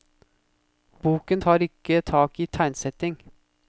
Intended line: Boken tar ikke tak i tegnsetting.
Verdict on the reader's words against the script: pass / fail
pass